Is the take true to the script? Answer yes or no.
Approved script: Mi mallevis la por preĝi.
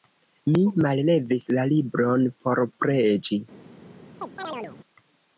no